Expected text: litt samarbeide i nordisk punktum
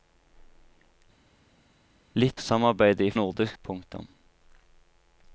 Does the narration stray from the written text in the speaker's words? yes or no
no